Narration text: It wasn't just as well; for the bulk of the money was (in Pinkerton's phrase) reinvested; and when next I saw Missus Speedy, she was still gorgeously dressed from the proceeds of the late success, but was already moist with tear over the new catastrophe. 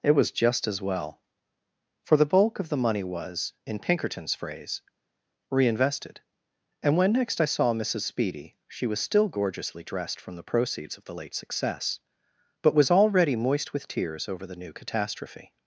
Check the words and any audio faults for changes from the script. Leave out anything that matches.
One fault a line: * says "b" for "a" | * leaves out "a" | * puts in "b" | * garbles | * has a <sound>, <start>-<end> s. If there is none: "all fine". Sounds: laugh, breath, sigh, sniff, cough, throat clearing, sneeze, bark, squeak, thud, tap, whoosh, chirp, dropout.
* says "was" for "wasn't"
* says "tears" for "tear"